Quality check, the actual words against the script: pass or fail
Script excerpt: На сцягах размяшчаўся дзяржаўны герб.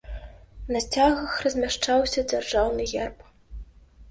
pass